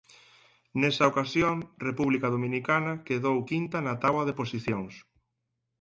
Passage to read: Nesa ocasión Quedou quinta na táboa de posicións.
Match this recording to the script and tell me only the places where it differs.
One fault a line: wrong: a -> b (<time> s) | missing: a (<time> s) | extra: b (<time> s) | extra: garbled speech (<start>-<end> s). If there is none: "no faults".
extra: República Dominicana (1.9 s)